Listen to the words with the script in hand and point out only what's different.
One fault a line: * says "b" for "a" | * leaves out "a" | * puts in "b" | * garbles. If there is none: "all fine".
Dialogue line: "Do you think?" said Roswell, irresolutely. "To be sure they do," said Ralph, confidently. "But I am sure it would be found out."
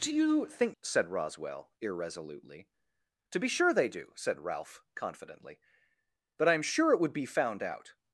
all fine